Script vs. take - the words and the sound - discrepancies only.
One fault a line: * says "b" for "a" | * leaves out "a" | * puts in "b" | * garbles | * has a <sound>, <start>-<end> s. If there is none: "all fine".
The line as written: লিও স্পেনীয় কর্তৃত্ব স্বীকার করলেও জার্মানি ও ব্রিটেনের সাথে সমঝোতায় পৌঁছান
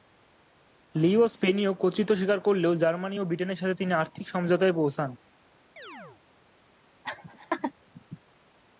* puts in "তিনি আর্থিক"
* has a chirp, 5.8-6.2 s
* has a laugh, 7.0-7.7 s